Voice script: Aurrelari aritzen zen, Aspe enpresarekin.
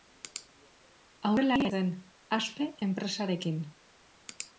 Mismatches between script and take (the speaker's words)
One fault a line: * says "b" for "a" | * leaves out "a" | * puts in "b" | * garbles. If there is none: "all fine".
* leaves out "aritzen"